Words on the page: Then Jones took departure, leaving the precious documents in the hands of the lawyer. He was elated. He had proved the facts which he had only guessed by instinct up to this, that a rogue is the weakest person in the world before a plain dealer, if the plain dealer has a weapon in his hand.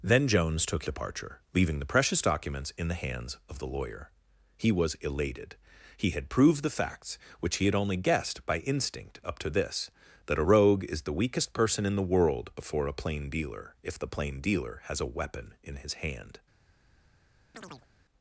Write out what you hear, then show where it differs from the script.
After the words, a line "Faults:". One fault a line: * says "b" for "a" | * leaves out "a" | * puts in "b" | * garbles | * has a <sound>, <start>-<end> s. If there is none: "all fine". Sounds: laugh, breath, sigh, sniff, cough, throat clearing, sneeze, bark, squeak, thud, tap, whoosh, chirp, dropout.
Then Jones took departure, leaving the precious documents in the hands of the lawyer. He was elated. He had proved the facts which he had only guessed by instinct up to this, that a rogue is the weakest person in the world before a plain dealer, if the plain dealer has a weapon in his hand.
Faults:
* has a chirp, 17.5-17.9 s